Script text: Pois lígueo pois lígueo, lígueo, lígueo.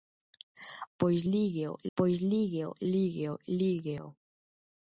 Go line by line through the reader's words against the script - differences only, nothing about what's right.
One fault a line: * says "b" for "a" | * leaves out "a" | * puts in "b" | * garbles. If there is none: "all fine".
all fine